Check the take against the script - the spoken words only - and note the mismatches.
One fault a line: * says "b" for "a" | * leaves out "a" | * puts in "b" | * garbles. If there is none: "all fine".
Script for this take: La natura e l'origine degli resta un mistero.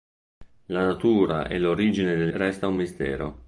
all fine